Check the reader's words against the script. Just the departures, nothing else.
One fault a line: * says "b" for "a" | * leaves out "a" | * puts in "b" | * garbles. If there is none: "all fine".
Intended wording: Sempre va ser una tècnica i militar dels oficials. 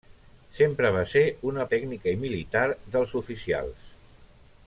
all fine